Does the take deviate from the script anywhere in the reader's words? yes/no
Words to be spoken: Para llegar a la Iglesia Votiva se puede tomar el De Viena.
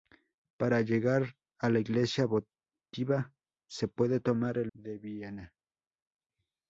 no